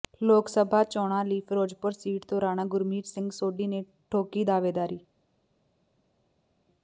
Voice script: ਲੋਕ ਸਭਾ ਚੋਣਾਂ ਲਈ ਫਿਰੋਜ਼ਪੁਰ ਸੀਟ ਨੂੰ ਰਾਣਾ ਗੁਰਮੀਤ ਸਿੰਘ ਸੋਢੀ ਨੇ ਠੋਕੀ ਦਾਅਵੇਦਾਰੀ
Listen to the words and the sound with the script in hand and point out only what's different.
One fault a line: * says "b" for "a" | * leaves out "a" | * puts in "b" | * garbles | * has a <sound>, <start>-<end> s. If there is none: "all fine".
* says "ਤੋਂ" for "ਨੂੰ"